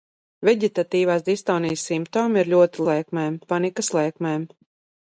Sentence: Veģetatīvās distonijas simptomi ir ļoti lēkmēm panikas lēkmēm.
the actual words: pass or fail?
pass